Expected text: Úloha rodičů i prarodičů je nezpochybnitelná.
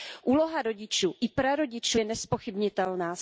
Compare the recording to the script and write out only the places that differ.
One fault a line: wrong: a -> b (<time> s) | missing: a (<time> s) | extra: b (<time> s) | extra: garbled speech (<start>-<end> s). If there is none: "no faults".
no faults